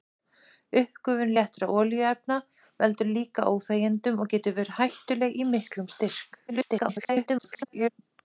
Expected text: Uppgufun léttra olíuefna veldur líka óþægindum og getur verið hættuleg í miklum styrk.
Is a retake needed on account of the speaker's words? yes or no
yes